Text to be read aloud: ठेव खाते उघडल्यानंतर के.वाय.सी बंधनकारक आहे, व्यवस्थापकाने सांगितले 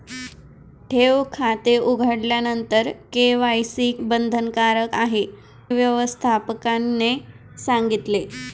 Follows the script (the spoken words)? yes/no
yes